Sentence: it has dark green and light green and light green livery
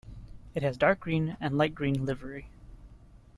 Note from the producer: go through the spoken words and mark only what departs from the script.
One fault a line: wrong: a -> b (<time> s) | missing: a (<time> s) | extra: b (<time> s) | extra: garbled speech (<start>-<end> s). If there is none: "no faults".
missing: and light green (2.0 s)